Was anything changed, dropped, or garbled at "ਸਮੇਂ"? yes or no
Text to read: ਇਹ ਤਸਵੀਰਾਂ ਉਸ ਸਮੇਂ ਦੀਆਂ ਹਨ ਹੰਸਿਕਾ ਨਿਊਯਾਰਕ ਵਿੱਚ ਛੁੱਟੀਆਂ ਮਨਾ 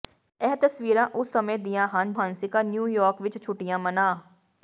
no